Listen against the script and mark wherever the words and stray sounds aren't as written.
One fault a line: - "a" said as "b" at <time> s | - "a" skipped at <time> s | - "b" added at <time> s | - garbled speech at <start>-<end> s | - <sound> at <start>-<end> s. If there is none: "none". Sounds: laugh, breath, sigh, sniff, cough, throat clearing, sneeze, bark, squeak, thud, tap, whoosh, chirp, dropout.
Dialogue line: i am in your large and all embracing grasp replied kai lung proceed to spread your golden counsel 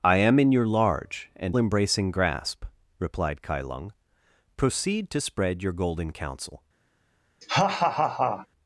- "all" skipped at 1.6 s
- laugh at 7.4-8.5 s